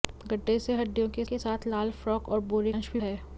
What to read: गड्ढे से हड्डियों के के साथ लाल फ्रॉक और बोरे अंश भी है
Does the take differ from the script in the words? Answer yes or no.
no